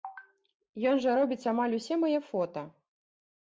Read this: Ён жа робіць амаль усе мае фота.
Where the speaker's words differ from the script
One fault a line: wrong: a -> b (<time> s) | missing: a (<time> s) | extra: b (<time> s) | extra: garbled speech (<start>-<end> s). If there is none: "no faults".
no faults